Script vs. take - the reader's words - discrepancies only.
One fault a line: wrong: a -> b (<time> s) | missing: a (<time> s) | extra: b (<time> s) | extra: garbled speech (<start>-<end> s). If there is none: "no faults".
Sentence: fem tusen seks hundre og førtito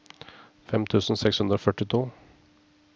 no faults